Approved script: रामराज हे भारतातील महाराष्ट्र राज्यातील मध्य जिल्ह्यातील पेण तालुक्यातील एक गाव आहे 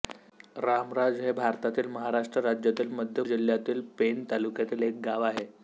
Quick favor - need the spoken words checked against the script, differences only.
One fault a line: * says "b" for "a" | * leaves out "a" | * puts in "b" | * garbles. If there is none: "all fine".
all fine